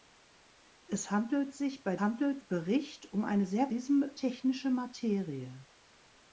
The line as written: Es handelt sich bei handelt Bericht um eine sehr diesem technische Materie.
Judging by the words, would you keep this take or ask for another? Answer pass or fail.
pass